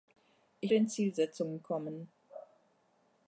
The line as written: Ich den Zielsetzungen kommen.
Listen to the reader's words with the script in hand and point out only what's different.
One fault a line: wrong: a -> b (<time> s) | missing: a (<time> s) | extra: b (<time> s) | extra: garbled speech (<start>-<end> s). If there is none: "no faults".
no faults